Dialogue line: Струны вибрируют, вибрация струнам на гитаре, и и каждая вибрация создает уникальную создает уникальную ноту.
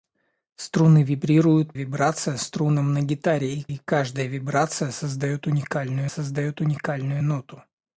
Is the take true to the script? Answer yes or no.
yes